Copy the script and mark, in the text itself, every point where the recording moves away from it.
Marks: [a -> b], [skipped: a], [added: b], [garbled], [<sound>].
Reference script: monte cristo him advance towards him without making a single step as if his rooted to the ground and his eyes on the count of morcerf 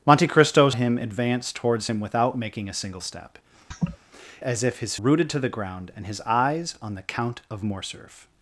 monte cristo him advance towards him without making a single step [laugh] as if his rooted to the ground and his eyes on the count of morcerf